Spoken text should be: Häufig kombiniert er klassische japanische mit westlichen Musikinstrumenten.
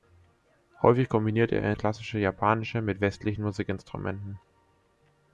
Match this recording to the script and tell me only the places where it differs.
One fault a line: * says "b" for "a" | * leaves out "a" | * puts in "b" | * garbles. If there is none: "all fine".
all fine